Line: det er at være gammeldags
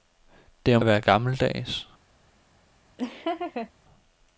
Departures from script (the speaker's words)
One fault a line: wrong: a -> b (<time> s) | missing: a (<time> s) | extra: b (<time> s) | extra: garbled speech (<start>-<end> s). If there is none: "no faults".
no faults